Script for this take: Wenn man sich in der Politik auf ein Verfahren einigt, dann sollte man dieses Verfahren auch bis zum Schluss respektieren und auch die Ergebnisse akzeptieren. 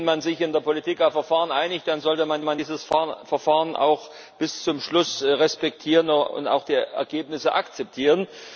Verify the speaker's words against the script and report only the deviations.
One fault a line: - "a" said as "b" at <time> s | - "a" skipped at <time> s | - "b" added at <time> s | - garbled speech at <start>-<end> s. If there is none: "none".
- "ein" skipped at 1.1 s
- "man" added at 2.4 s